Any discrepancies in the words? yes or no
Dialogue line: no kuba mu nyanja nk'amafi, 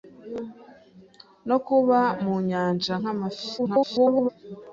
yes